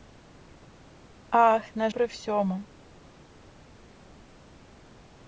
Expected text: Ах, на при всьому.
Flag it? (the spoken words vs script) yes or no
no